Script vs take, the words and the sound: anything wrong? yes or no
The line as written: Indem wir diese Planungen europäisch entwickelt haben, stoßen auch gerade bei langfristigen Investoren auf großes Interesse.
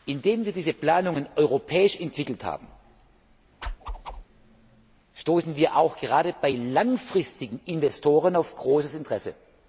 yes